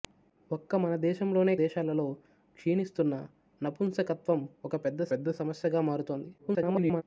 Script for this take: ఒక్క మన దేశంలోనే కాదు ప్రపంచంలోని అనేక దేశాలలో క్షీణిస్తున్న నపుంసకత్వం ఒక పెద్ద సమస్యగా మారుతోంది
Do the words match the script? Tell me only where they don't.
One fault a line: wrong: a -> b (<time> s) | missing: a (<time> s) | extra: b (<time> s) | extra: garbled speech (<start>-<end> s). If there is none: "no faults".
missing: కాదు ప్రపంచంలోని అనేక (1.5 s)
extra: పెద్ద (5.1 s)
extra: garbled speech (6.4-7.0 s)